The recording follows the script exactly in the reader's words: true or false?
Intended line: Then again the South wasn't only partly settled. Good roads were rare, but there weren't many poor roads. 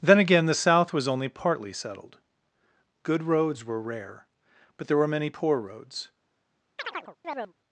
false